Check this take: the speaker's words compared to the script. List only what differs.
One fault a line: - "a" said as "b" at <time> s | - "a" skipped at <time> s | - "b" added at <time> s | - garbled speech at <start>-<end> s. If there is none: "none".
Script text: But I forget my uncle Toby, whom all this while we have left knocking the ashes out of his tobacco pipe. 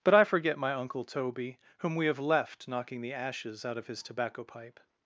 - "all this while" skipped at 1.9 s